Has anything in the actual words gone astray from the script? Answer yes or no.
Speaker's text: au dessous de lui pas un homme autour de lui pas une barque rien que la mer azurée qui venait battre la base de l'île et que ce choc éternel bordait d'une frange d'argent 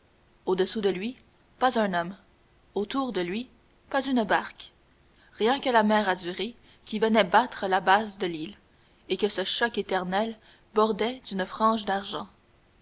no